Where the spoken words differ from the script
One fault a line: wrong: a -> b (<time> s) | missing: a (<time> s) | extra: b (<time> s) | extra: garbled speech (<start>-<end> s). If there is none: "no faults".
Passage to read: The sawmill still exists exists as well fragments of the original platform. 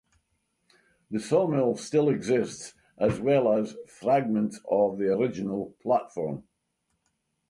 missing: exists (2.7 s)
extra: as (3.5 s)